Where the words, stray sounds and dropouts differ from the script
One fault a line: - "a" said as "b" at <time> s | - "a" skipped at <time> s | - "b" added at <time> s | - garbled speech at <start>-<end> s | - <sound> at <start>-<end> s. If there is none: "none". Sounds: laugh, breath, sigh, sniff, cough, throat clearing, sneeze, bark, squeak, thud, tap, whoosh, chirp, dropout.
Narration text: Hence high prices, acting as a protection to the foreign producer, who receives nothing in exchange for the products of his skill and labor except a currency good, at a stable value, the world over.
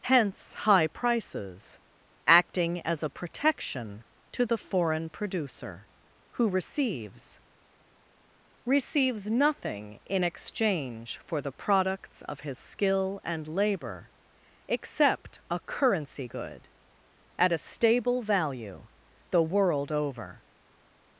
- "receives" added at 8.7 s